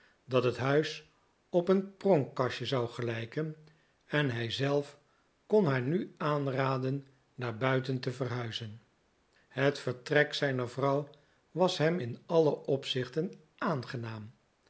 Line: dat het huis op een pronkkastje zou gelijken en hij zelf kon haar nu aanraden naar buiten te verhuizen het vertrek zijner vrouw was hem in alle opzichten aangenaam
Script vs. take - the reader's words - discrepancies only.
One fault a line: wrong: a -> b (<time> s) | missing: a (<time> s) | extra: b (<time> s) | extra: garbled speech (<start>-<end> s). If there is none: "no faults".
no faults